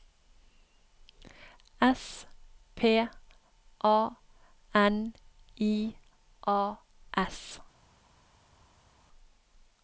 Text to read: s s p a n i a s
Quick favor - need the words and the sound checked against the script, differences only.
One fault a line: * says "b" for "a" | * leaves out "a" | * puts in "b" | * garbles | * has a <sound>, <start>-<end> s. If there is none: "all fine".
* leaves out "s"